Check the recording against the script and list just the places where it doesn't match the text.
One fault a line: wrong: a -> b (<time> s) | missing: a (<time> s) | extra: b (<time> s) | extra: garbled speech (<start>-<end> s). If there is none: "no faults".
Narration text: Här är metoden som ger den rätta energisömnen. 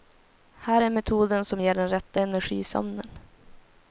no faults